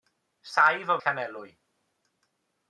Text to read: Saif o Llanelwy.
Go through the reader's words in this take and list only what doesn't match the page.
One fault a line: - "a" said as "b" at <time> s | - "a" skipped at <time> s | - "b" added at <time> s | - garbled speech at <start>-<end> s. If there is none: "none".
none